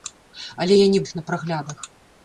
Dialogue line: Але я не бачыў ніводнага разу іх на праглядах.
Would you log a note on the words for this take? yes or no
yes